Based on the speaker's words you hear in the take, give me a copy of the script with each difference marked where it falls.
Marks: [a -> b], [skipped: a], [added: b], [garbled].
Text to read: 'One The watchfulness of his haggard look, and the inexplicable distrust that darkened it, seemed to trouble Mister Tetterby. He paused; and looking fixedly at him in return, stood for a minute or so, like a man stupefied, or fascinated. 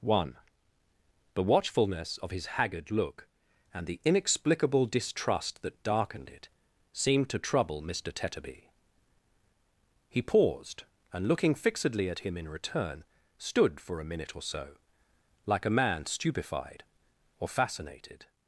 'One The watchfulness of his haggard look, and the inexplicable distrust that darkened it, seemed to trouble Mister Tetterby. He paused; and looking fixedly at him in return, stood for a minute or so, like a man stupefied, or fascinated.